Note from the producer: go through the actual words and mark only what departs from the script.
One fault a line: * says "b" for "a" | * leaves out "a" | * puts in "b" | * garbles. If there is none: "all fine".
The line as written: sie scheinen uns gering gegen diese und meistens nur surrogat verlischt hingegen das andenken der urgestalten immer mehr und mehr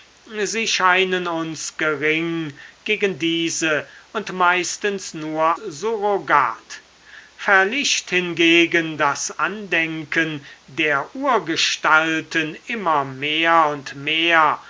all fine